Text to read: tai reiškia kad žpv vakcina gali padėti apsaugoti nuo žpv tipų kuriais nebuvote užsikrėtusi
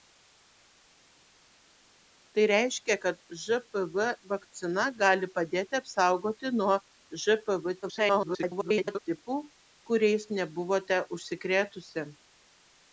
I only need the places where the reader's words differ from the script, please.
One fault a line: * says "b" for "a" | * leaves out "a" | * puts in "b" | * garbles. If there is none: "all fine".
* garbles